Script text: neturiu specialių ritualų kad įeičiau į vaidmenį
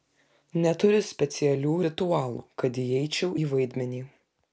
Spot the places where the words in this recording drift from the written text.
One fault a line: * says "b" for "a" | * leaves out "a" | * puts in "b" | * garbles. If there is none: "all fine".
all fine